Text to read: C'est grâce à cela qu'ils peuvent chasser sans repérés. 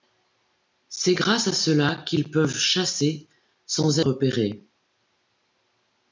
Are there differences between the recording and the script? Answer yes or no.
no